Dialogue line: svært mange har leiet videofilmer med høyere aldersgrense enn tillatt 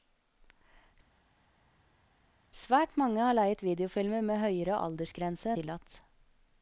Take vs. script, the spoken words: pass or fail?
fail